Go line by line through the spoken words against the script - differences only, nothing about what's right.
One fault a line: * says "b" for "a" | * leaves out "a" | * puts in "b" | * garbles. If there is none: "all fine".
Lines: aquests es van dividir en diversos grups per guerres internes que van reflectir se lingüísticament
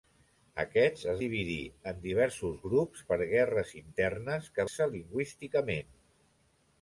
* leaves out "van"
* leaves out "van reflectir"